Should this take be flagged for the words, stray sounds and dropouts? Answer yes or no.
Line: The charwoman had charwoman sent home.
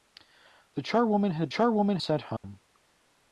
yes